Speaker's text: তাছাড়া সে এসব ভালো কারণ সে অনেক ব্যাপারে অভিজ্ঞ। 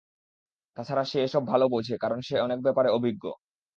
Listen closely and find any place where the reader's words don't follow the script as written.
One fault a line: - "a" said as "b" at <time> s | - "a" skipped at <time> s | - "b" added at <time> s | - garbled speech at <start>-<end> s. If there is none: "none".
- "বোঝে" added at 1.7 s